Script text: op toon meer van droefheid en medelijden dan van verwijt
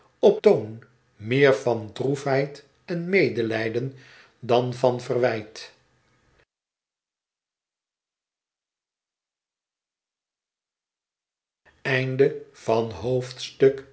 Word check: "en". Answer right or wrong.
right